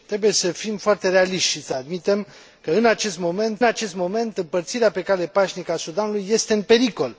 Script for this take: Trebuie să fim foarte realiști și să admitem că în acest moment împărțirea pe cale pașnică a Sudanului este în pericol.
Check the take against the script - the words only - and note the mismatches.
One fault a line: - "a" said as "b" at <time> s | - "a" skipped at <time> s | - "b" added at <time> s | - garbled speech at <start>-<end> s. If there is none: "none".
- "acest moment" added at 3.6 s